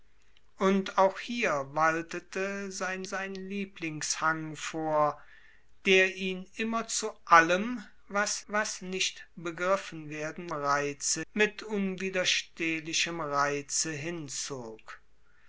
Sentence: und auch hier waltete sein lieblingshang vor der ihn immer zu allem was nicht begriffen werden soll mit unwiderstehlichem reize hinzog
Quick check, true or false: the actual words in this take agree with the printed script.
false